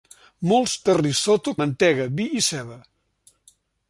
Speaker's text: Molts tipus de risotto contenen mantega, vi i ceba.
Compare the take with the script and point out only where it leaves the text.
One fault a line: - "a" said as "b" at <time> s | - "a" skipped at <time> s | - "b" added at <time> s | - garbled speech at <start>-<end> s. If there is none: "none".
- "tipus" skipped at 0.7 s
- "contenen" skipped at 1.5 s